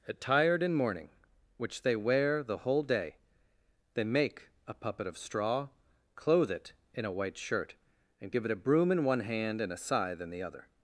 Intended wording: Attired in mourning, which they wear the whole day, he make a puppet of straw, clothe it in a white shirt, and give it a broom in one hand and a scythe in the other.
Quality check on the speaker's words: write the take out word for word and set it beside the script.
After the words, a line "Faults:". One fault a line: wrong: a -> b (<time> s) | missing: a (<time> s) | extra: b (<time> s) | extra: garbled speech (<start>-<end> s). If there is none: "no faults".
Attired in mourning, which they wear the whole day, they make a puppet of straw, clothe it in a white shirt, and give it a broom in one hand and a scythe in the other.
Faults:
wrong: he -> they (3.9 s)